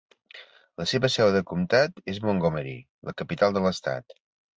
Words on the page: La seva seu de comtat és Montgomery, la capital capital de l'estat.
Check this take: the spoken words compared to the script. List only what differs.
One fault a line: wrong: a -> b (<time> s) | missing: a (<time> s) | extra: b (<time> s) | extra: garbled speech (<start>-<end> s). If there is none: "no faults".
missing: capital (3.6 s)